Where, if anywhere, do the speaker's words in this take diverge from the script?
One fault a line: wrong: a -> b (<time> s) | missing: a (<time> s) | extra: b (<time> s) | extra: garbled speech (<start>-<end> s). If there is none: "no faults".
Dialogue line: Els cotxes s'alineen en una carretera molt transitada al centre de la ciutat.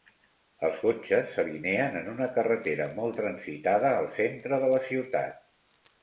no faults